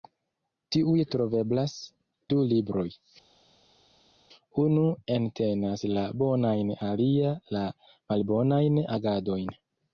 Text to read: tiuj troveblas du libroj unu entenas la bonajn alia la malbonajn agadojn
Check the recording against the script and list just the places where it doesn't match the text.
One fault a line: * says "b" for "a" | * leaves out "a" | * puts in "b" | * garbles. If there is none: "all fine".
all fine